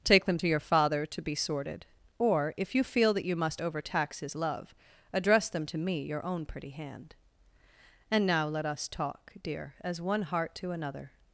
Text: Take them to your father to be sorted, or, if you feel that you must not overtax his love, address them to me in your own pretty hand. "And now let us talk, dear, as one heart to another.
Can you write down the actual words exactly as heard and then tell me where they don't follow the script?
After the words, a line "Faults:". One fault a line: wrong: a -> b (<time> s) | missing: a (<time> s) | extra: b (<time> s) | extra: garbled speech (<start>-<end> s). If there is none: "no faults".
Take them to your father to be sorted, or, if you feel that you must overtax his love, address them to me your own pretty hand. "And now let us talk, dear, as one heart to another.
Faults:
missing: not (3.6 s)
missing: in (6.0 s)